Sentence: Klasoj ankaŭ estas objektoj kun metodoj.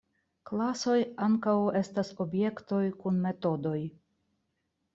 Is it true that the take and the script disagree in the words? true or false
false